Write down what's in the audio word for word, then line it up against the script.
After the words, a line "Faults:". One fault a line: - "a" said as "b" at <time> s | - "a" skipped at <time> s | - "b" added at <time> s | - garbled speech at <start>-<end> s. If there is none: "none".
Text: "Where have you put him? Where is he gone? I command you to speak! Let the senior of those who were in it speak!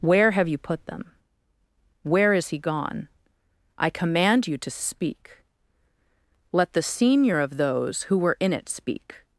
"Where have you put them? Where is he gone? I command you to speak! Let the senior of those who were in it speak!
Faults:
- "him" said as "them" at 0.9 s